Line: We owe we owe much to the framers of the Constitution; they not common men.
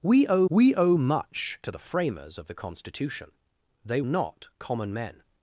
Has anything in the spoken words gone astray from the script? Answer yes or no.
no